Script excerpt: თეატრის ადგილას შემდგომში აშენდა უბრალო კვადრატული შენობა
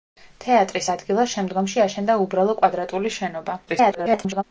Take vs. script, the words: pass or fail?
fail